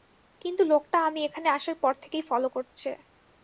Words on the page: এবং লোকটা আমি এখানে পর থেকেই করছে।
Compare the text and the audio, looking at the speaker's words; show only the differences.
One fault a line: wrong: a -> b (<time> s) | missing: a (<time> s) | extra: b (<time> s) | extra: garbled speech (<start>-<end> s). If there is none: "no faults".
wrong: এবং -> কিন্তু (0.4 s)
extra: আসার (1.5 s)
extra: ফলো (2.3 s)